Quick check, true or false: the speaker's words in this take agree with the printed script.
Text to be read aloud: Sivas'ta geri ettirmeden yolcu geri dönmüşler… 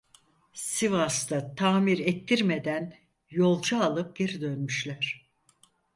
false